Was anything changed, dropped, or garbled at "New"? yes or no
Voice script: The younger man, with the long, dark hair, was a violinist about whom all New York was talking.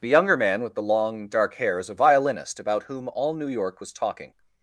no